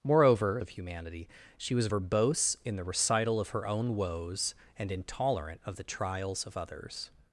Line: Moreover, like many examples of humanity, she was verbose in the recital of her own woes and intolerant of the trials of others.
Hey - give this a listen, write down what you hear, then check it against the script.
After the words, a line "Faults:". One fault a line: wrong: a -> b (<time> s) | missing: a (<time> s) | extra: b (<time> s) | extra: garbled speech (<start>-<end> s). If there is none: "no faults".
Moreover, of humanity, she was verbose in the recital of her own woes and intolerant of the trials of others.
Faults:
missing: like many examples (0.6 s)